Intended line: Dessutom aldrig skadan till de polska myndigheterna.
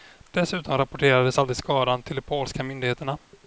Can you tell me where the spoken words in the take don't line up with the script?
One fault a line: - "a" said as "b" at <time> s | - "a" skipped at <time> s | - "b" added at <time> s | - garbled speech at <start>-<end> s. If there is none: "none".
- "rapporterades" added at 0.8 s